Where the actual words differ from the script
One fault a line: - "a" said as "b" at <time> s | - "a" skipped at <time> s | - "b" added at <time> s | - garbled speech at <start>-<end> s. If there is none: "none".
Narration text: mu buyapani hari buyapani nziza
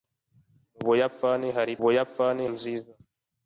none